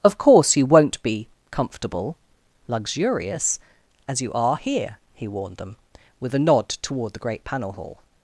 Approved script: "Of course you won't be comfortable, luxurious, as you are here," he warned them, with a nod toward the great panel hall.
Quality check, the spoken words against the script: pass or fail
pass